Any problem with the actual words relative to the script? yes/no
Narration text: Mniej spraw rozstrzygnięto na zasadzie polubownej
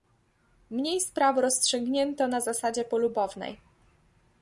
no